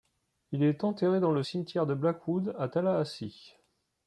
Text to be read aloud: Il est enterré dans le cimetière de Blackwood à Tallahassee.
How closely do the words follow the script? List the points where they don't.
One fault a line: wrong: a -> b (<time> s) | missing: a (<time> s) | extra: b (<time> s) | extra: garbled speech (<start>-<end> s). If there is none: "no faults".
no faults